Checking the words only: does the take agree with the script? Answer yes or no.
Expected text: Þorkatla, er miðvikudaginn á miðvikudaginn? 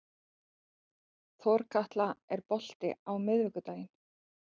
no